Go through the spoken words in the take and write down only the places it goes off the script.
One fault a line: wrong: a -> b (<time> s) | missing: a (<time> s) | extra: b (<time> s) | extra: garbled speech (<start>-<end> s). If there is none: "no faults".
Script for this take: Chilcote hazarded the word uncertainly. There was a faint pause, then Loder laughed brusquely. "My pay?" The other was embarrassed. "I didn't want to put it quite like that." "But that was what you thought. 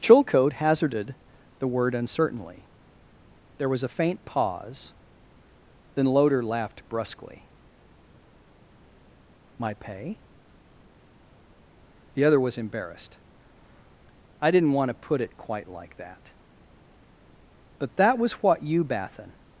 wrong: thought -> bathin (18.8 s)